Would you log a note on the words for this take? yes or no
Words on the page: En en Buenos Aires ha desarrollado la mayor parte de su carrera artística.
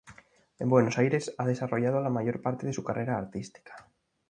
yes